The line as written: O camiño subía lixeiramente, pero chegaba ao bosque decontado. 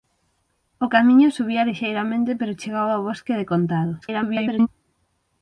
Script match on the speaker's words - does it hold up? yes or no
no